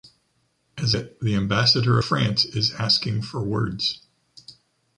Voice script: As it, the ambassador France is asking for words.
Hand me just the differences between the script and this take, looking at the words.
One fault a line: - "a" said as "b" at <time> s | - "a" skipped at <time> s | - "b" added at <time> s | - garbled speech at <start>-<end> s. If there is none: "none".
none